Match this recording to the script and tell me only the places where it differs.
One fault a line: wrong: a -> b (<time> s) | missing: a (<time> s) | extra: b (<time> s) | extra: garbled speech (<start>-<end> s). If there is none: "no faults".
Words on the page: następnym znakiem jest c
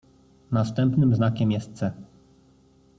no faults